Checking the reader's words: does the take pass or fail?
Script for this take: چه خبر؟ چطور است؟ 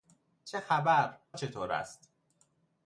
pass